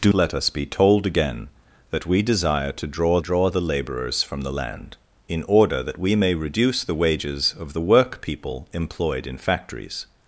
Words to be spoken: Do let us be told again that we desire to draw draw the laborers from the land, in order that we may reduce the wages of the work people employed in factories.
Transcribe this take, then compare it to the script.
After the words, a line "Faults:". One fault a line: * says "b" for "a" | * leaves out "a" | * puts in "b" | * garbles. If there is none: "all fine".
Do let us be told again that we desire to draw draw the laborers from the land, in order that we may reduce the wages of the work people employed in factories.
Faults:
all fine